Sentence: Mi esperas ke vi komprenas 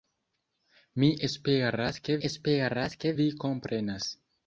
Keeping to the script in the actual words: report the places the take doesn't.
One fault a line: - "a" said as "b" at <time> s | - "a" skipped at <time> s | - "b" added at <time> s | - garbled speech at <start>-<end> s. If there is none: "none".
- "esperas ke" added at 2.3 s